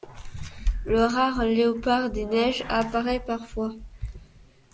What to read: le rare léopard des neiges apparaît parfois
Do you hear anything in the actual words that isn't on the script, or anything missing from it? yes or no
no